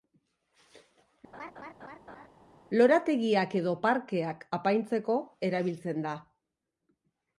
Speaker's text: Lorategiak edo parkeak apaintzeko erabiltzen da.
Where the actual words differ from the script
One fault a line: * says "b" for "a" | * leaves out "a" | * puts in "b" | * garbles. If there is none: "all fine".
all fine